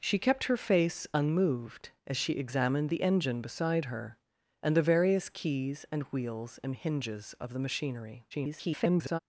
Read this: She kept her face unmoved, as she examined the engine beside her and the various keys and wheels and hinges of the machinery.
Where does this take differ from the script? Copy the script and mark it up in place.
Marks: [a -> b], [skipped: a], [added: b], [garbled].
She kept her face unmoved, as she examined the engine beside her and the various keys and wheels and hinges of the machinery. [garbled]